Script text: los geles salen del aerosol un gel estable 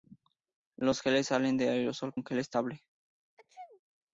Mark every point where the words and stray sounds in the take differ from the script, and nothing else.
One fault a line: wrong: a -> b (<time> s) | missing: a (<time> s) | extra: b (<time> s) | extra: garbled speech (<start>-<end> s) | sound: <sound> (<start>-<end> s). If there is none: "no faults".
sound: sneeze (3.4-3.8 s)